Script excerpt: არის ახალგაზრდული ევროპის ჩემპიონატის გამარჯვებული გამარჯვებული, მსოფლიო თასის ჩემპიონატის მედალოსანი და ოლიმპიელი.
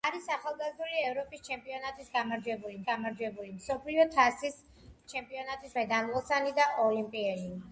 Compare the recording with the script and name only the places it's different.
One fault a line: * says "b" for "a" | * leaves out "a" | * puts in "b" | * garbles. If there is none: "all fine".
all fine